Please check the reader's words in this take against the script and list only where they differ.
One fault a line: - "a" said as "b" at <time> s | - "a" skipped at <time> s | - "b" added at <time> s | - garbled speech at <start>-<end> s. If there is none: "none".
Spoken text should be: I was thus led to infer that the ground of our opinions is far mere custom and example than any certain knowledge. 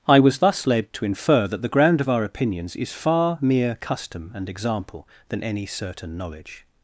none